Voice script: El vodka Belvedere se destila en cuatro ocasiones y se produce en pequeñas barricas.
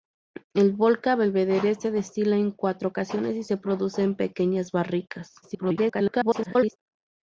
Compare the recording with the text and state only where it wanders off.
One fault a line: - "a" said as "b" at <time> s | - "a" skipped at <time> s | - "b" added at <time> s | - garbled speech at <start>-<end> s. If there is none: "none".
- garbled speech at 5.4-6.8 s